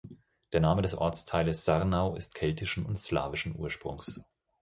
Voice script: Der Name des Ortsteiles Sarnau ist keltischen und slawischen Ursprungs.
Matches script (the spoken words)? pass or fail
pass